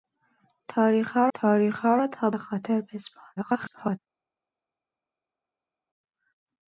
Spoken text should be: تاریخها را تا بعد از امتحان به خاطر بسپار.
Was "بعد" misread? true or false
true